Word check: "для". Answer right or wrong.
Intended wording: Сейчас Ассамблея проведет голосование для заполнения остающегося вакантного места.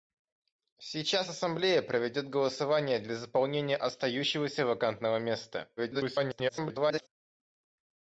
right